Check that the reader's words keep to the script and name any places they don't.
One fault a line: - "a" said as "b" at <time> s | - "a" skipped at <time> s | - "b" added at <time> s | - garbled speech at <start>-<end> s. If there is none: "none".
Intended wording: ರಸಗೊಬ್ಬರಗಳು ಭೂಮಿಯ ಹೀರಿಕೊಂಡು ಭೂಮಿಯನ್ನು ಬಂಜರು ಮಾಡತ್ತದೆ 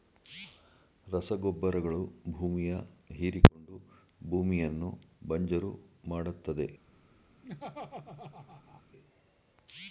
none